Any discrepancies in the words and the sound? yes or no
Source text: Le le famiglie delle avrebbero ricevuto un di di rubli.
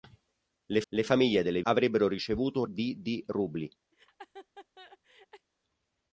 yes